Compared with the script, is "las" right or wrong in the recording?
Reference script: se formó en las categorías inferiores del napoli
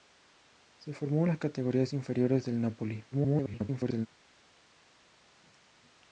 right